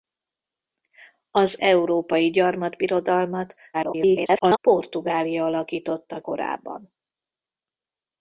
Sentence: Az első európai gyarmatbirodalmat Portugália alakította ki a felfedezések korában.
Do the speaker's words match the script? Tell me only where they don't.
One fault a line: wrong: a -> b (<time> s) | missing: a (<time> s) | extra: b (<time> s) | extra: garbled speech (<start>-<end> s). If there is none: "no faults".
missing: első (1.6 s)
extra: garbled speech (3.7-4.6 s)
missing: ki a felfedezések (6.2 s)